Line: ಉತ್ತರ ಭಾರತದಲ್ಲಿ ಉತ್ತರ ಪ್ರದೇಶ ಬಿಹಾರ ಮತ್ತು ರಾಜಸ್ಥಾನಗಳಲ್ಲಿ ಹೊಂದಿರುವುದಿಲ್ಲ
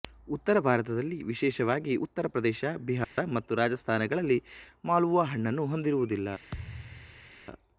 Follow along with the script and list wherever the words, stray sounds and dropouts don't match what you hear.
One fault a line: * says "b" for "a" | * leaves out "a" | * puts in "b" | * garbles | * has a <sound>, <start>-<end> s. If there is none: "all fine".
* puts in "ವಿಶೇಷವಾಗಿ"
* has a dropout, 3.0-3.2 s
* puts in "ಮಾಲ್ಪುವಾ ಹಣ್ಣನ್ನು"
* has a thud, 6.5-7.3 s